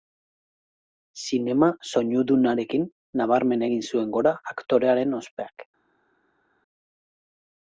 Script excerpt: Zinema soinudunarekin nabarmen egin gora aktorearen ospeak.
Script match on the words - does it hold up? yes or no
no